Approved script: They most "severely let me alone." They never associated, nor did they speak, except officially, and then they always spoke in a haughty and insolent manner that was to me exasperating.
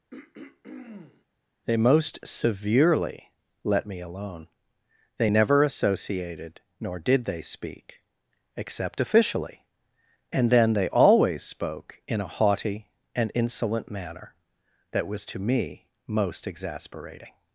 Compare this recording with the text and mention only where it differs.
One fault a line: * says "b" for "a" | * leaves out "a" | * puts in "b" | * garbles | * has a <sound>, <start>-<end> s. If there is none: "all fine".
* has a throat clearing, 0.1-1.2 s
* puts in "most"